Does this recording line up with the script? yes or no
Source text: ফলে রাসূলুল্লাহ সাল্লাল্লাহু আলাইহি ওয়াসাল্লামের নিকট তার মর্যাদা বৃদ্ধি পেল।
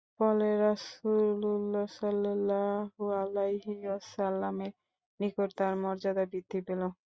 yes